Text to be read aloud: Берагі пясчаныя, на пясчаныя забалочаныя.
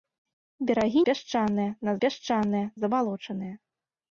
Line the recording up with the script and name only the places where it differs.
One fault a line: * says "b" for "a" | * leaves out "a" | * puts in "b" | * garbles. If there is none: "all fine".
all fine